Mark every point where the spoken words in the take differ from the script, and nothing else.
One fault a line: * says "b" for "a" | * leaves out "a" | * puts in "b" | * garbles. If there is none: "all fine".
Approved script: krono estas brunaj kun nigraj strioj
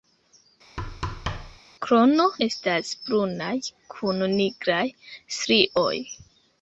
all fine